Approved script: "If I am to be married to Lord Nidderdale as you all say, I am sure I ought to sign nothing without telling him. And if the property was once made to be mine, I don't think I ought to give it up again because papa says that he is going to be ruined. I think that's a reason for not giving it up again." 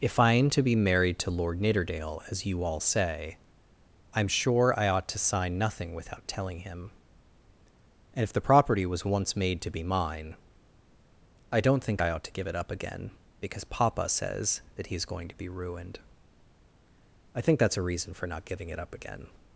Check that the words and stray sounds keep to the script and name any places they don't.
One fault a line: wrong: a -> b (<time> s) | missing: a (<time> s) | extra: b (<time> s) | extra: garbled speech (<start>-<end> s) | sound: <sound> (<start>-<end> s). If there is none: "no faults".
no faults